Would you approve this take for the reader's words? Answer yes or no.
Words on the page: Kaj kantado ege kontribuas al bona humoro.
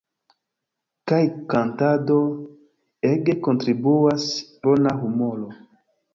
no